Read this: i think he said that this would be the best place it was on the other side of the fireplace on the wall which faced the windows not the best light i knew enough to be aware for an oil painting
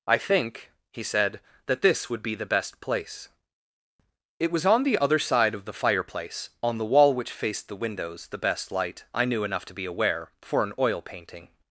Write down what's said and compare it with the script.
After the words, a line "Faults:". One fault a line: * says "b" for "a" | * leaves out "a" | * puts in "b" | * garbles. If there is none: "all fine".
i think he said that this would be the best place it was on the other side of the fireplace on the wall which faced the windows the best light i knew enough to be aware for an oil painting
Faults:
* leaves out "not"